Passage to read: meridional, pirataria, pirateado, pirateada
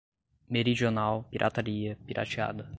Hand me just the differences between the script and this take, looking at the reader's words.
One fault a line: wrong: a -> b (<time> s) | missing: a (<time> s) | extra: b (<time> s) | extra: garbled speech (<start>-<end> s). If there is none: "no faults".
missing: pirateado (2.0 s)